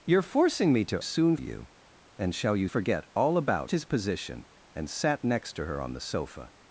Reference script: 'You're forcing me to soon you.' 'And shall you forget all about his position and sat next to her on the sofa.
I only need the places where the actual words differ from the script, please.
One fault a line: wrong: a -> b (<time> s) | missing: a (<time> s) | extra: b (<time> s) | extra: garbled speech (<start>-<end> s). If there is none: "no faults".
no faults